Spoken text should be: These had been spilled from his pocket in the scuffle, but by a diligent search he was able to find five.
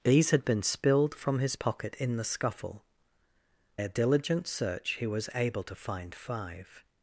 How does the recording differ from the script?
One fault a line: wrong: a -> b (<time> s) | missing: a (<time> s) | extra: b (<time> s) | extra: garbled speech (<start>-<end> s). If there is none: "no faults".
missing: but by (2.8 s)